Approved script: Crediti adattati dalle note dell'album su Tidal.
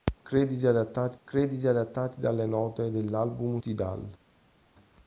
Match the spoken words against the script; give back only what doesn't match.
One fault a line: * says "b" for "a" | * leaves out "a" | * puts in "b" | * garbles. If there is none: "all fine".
* puts in "crediti adattati"
* leaves out "su"